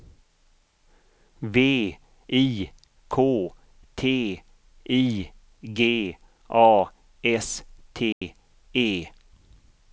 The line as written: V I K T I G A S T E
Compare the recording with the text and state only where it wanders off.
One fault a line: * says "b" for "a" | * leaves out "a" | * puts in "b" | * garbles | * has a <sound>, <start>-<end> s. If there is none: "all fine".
* has a dropout, 8.1-8.2 s